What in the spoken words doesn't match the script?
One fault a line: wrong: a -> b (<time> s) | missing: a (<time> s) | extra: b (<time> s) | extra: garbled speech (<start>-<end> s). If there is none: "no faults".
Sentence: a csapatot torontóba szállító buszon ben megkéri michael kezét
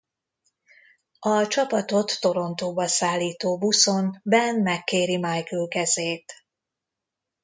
no faults